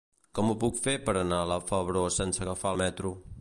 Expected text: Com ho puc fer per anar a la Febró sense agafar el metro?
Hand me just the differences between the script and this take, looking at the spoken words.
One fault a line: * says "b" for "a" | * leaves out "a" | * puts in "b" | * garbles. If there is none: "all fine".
all fine